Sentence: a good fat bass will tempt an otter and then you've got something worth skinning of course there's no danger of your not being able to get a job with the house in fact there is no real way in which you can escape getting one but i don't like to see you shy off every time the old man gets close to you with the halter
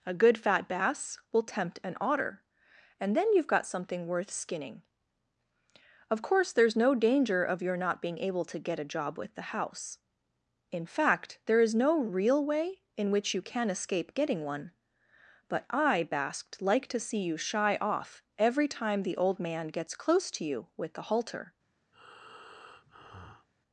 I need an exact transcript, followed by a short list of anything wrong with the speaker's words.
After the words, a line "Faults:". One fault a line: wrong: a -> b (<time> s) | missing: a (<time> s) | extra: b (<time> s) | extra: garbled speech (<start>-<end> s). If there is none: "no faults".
a good fat bass will tempt an otter and then you've got something worth skinning of course there's no danger of your not being able to get a job with the house in fact there is no real way in which you can escape getting one but i basked like to see you shy off every time the old man gets close to you with the halter
Faults:
wrong: don't -> basked (16.0 s)